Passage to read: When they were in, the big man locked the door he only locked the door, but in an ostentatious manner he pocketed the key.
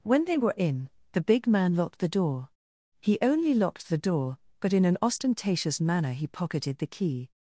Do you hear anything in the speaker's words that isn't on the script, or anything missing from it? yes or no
no